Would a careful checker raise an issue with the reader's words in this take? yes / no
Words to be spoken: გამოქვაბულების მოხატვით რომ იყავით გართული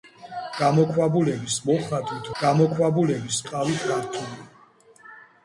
yes